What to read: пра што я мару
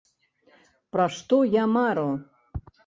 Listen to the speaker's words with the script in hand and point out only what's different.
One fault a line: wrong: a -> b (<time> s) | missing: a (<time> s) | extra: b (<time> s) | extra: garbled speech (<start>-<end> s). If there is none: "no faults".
no faults